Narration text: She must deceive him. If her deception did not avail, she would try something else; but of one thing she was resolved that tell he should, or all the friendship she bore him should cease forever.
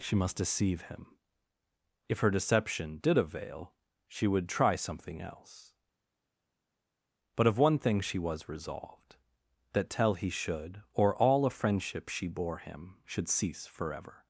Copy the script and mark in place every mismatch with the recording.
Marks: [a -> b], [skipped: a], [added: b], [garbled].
She must deceive him. If her deception did [skipped: not] avail, she would try something else; but of one thing she was resolved that tell he should, or all [the -> a] friendship she bore him should cease forever.